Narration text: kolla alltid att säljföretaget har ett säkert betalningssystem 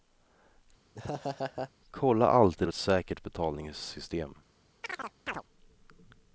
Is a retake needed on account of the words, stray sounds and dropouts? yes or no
yes